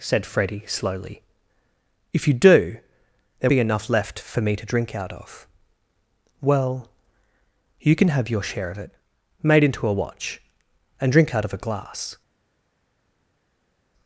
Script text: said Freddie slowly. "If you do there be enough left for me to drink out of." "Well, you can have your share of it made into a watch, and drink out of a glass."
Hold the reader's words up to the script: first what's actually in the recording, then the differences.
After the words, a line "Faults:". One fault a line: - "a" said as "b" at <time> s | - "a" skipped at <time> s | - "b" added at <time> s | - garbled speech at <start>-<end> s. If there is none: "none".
said Freddie slowly. "If you do there be enough left for me to drink out of." "Well, you can have your share of it made into a watch, and drink out of a glass."
Faults:
none